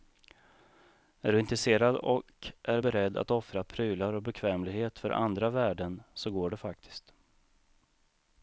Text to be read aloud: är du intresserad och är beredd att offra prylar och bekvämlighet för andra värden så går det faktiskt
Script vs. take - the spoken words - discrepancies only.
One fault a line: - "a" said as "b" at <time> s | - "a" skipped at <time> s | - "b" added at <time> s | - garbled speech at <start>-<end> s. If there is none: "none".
none